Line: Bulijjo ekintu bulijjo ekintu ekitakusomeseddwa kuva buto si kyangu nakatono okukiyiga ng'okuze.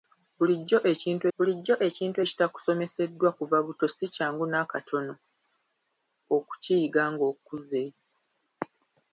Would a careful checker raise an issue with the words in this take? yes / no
no